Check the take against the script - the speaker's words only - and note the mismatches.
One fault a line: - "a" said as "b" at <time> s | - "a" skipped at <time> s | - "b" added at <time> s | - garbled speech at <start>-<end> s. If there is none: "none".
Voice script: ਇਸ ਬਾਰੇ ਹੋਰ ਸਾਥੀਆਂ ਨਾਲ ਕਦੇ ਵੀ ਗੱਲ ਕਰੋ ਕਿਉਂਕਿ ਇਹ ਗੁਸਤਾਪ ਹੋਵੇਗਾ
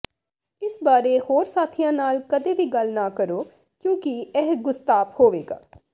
- "ਨਾ" added at 2.9 s